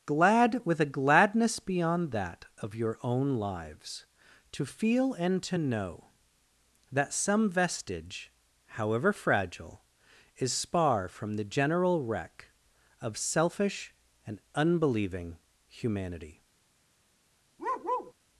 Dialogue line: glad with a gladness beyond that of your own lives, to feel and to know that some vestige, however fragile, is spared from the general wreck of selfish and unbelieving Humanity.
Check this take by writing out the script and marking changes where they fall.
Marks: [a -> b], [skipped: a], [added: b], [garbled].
glad with a gladness beyond that of your own lives, to feel and to know that some vestige, however fragile, is [spared -> spar] from the general wreck of selfish and unbelieving Humanity.